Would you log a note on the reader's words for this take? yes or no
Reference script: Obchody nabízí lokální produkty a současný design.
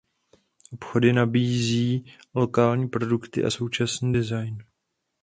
no